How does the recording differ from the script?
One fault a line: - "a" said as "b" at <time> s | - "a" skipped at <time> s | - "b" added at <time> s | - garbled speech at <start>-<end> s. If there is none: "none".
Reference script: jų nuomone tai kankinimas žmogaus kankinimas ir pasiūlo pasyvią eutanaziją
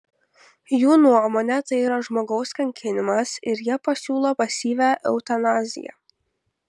- "kankinimas" said as "yra" at 1.9 s
- "jie" added at 3.7 s